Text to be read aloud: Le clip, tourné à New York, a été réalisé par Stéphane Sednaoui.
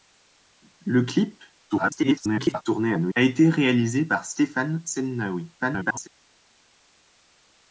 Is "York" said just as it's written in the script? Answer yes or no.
no